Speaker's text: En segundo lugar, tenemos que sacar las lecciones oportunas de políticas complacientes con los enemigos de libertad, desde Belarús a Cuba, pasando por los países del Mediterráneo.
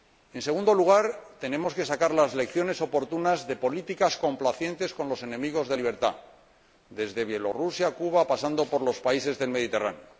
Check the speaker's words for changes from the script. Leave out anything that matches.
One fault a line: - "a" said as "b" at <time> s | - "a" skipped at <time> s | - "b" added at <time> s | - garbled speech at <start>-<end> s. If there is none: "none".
none